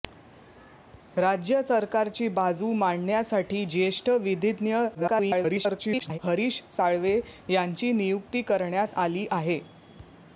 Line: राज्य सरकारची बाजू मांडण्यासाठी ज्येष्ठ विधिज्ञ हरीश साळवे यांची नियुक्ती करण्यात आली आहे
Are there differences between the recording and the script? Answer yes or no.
yes